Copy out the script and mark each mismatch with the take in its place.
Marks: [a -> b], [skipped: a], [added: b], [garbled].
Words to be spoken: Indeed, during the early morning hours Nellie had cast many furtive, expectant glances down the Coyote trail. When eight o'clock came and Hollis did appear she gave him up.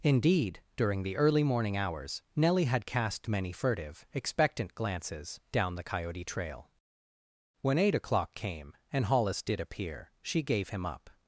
Indeed, during the early morning hours Nellie had cast many furtive, expectant glances down the Coyote trail. When eight o'clock came and Hollis did appear she gave him up.